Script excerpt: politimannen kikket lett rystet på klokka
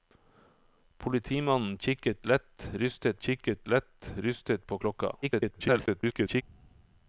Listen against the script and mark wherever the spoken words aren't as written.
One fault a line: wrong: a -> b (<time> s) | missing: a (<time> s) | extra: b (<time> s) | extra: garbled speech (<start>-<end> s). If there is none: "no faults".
extra: kikket lett rystet (3.2 s)
extra: garbled speech (5.2-6.4 s)